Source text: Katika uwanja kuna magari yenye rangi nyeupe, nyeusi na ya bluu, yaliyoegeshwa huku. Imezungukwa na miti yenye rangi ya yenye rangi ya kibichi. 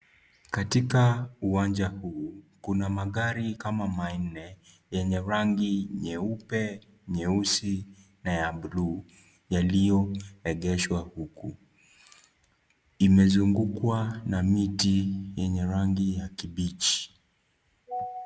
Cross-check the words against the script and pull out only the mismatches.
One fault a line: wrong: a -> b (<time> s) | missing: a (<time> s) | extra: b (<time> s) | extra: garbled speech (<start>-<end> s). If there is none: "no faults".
extra: huu (1.9 s)
extra: kama manne (3.5 s)
missing: yenye rangi ya (16.3 s)